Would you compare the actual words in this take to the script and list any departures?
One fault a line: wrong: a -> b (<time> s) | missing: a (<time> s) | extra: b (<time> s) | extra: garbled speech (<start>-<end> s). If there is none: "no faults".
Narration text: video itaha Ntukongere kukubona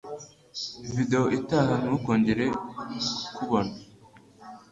no faults